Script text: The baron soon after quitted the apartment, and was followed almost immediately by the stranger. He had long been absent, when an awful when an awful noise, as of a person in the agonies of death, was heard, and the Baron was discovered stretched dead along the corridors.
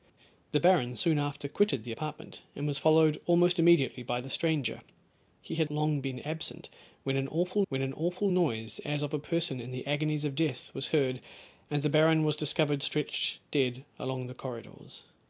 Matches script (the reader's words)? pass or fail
pass